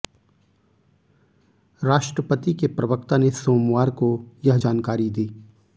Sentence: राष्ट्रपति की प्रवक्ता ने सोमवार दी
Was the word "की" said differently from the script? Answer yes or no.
yes